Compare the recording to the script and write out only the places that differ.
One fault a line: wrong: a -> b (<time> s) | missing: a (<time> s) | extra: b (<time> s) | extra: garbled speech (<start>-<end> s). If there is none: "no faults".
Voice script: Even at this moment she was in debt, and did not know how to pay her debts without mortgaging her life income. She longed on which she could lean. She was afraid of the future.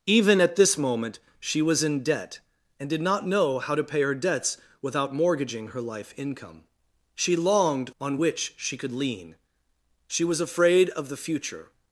no faults